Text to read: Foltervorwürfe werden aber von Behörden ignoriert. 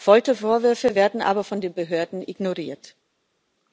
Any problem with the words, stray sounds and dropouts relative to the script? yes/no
yes